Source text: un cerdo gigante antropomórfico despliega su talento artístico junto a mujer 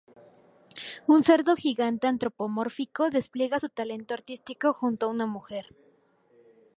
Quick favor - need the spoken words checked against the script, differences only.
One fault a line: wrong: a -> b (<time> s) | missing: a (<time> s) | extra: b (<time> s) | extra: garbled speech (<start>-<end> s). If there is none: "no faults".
extra: una (5.1 s)